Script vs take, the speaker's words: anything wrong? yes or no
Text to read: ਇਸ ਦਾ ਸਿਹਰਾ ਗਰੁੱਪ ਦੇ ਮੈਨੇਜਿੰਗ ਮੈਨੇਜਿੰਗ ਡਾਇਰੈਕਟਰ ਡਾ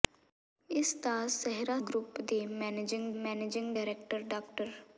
no